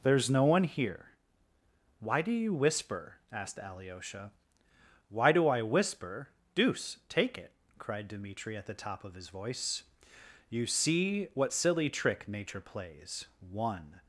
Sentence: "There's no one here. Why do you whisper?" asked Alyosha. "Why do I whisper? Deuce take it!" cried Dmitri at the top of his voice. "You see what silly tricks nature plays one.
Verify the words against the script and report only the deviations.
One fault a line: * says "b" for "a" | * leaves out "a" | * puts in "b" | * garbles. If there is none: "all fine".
* says "trick" for "tricks"